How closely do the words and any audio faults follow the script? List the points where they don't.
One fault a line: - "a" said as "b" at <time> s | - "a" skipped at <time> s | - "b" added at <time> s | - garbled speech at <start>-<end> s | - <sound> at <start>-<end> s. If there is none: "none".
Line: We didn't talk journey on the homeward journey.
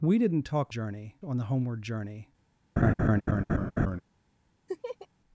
- laugh at 2.8-4.0 s
- laugh at 4.7-5.1 s